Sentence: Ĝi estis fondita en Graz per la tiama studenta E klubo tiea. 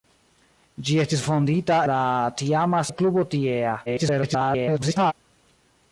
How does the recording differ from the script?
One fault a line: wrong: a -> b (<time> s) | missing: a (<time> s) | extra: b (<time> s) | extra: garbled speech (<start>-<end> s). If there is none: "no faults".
missing: en Graz per (1.8 s)
missing: studenta (2.8 s)
extra: garbled speech (3.9-5.1 s)